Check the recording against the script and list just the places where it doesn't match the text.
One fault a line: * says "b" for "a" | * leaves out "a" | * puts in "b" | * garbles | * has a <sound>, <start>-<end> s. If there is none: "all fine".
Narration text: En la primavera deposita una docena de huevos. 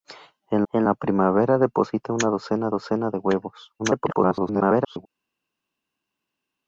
* puts in "en"
* puts in "docena"
* garbles